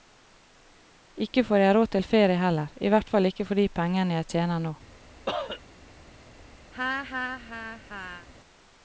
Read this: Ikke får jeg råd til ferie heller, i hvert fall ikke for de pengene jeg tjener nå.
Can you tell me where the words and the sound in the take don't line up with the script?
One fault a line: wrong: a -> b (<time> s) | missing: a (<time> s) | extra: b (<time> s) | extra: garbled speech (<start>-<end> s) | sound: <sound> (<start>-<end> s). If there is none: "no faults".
sound: cough (5.3-5.6 s)
sound: laugh (6.7-8.3 s)